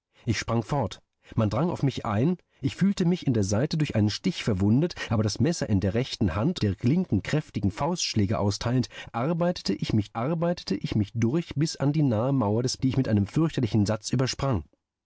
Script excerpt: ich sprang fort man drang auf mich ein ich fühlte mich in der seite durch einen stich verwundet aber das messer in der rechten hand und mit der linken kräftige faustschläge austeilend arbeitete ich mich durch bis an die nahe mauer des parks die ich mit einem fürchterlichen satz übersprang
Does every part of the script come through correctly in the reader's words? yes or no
no